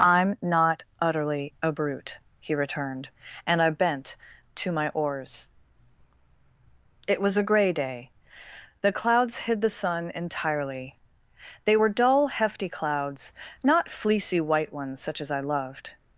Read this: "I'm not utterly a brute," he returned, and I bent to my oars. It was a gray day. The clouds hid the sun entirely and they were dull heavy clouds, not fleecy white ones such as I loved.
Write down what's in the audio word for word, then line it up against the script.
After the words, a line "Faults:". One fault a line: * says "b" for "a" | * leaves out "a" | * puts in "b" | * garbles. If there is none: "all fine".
"I'm not utterly a brute," he returned, and I bent to my oars. It was a gray day. The clouds hid the sun entirely they were dull hefty clouds, not fleecy white ones such as I loved.
Faults:
* leaves out "and"
* says "hefty" for "heavy"